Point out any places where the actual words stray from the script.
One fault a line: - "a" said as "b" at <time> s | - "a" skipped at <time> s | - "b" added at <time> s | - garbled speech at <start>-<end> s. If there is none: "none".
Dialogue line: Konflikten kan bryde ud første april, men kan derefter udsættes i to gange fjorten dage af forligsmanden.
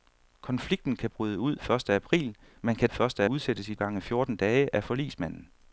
- "derefter" said as "første" at 2.9 s
- "to" skipped at 3.7 s